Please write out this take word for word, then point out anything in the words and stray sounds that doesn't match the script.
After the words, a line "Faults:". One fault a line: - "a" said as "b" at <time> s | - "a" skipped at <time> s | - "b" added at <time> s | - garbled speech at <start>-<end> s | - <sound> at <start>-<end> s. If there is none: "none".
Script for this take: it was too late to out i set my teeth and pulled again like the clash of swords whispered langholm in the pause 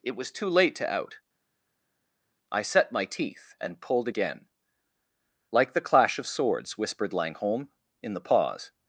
it was too late to out i set my teeth and pulled again like the clash of swords whispered langholm in the pause
Faults:
none